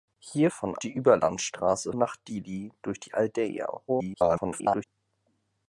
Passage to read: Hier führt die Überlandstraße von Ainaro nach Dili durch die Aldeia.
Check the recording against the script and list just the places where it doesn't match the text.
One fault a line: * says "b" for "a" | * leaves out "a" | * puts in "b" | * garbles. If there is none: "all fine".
* says "von" for "führt"
* leaves out "von Ainaro"
* garbles